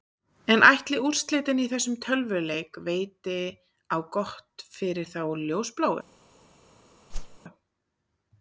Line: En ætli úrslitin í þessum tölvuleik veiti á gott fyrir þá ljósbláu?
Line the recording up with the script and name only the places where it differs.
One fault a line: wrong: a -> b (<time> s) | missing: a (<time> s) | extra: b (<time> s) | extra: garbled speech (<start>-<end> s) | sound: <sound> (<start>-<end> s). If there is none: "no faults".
sound: whoosh (7.1-7.4 s)